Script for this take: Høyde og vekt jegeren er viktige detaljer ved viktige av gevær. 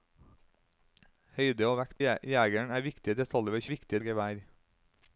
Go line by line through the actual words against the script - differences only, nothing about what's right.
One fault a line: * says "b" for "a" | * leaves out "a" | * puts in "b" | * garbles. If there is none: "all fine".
all fine